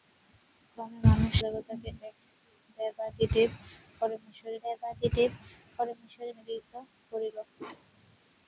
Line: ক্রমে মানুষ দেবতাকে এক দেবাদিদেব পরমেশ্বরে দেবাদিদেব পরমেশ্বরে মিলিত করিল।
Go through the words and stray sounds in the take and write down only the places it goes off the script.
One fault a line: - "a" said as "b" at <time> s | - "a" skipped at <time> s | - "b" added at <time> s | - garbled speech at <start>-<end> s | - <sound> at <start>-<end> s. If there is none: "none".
- bark at 7.6-8.2 s